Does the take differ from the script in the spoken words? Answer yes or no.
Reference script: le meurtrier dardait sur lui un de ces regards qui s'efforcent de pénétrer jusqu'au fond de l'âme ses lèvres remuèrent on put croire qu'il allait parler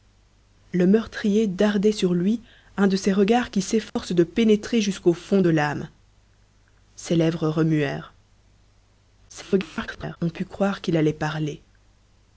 yes